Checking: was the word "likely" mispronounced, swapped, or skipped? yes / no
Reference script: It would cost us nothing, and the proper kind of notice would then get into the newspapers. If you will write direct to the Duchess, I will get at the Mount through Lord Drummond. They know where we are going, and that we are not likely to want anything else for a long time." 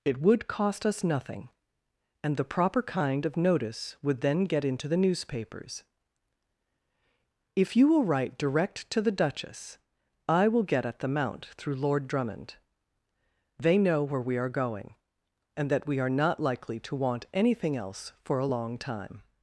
no